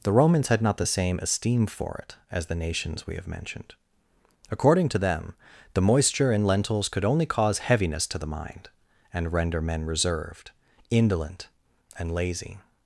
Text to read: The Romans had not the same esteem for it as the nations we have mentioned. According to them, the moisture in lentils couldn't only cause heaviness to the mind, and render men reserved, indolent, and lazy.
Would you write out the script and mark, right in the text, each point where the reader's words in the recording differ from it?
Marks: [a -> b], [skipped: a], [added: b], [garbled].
The Romans had not the same esteem for it as the nations we have mentioned. According to them, the moisture in lentils [couldn't -> could] only cause heaviness to the mind, and render men reserved, indolent, and lazy.